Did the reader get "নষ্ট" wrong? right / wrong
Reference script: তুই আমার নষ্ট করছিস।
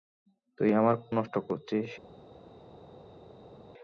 right